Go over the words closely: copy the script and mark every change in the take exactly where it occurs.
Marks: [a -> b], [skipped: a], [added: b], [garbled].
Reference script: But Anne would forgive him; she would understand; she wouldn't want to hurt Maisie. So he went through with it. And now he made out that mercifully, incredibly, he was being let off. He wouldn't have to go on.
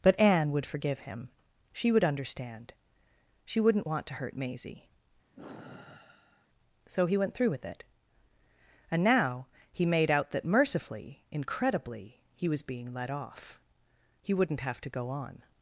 But Anne would forgive him; she would understand; she wouldn't want to hurt Maisie. So he went through with it. And now he made out that mercifully, incredibly, he was being let off. He wouldn't have to go on.